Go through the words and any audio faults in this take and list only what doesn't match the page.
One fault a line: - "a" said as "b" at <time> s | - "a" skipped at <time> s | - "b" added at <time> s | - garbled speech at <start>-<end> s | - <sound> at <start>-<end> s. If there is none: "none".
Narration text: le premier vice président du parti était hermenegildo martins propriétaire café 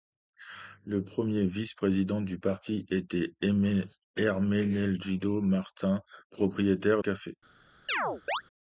- chirp at 7.9-8.4 s